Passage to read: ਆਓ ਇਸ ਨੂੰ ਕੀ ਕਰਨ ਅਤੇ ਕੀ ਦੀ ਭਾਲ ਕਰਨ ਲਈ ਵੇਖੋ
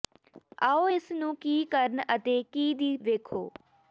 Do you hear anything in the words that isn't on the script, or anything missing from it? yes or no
yes